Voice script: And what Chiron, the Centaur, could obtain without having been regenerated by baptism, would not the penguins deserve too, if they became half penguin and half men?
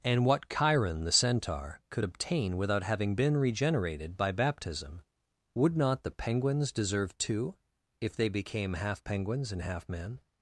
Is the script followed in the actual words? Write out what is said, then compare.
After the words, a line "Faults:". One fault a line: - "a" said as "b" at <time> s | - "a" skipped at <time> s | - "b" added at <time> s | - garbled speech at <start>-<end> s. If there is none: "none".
And what Chiron, the Centaur, could obtain without having been regenerated by baptism, would not the penguins deserve too, if they became half penguins and half men?
Faults:
- "penguin" said as "penguins" at 9.0 s